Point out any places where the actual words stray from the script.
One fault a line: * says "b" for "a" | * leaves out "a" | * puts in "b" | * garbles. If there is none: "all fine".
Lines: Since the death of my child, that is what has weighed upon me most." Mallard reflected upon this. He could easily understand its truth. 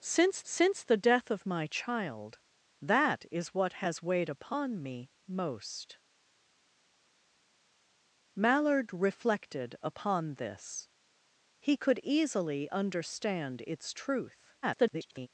* puts in "since"
* garbles